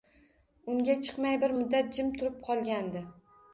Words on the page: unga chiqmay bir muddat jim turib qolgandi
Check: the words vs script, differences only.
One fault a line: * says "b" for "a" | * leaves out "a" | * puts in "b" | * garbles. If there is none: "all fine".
all fine